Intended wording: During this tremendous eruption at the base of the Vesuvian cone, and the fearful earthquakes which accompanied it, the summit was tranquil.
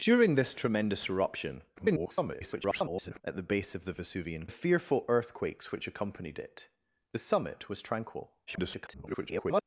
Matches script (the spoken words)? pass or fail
fail